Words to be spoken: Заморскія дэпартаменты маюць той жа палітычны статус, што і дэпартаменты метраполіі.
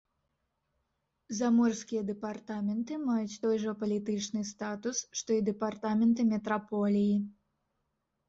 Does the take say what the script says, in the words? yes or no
yes